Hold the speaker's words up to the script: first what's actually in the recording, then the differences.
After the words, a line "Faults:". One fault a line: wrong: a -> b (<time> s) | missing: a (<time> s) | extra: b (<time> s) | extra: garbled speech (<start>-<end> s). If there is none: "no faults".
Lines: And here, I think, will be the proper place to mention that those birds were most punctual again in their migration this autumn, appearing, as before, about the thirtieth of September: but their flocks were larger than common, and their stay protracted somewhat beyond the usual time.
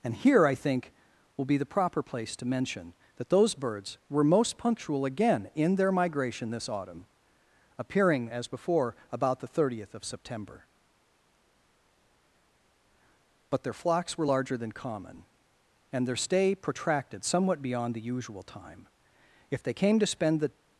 And here, I think, will be the proper place to mention that those birds were most punctual again in their migration this autumn, appearing, as before, about the thirtieth of September: but their flocks were larger than common, and their stay protracted somewhat beyond the usual time. If they came to spend the
Faults:
extra: If they came to spend the (19.5 s)